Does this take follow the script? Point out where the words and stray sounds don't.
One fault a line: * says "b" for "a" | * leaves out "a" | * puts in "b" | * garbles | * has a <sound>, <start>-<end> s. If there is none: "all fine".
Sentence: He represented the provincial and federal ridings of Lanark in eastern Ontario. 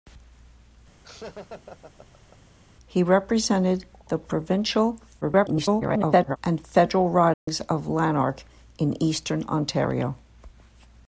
* has a laugh, 1.0-2.5 s
* garbles
* has a dropout, 7.3-7.5 s